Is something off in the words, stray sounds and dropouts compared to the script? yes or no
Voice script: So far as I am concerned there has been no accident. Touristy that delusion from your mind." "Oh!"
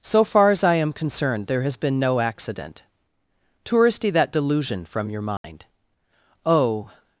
yes